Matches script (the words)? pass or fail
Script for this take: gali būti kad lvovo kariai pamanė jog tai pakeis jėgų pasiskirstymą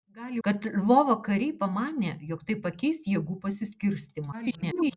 fail